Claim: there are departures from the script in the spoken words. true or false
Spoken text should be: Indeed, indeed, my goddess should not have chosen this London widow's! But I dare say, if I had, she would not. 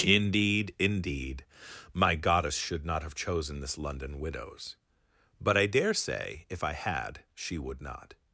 false